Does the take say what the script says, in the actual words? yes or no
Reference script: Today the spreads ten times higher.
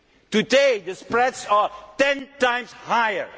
no